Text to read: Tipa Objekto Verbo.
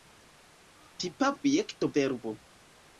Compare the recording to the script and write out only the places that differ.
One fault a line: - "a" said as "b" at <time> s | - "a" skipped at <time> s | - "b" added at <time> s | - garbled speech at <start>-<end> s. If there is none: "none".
none